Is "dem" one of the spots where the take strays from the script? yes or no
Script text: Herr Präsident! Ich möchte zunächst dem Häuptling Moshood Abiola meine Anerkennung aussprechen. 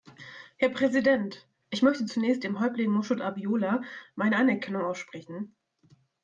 no